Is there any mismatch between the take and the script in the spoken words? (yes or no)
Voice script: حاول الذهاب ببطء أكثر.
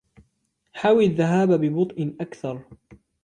no